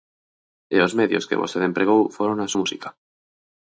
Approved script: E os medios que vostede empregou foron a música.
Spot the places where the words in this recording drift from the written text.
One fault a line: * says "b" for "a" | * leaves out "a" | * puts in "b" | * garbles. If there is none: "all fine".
all fine